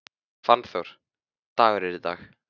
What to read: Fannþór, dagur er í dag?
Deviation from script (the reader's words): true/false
false